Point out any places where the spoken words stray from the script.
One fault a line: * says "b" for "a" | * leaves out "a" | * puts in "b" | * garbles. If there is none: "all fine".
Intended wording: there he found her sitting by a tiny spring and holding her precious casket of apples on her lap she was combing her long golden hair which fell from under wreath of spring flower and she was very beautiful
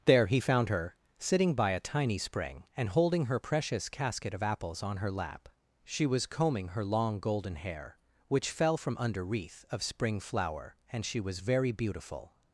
all fine